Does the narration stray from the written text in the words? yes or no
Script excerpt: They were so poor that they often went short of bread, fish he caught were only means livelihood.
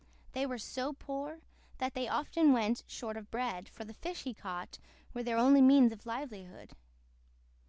yes